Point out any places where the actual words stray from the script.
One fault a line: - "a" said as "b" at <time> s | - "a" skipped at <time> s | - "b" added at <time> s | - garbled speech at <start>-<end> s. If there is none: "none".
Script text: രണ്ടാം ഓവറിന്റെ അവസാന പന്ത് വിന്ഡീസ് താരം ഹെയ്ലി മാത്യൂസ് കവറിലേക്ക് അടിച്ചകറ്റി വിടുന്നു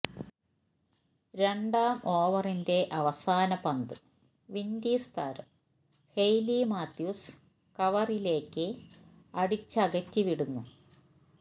none